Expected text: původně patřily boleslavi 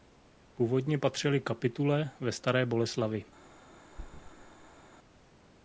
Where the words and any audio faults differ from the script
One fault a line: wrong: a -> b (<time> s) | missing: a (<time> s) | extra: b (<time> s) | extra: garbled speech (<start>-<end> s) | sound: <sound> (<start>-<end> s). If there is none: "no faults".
extra: kapitule ve staré (1.4 s)
sound: thud (3.9-4.8 s)